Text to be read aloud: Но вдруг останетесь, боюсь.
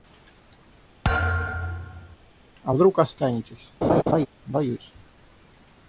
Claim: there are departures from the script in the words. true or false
true